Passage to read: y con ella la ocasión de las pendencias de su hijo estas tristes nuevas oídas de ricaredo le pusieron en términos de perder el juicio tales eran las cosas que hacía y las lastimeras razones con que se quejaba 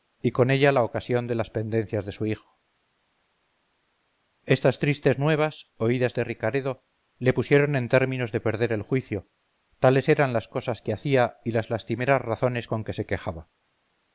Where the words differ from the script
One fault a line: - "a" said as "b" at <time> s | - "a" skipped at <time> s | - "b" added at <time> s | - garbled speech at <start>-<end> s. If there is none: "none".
none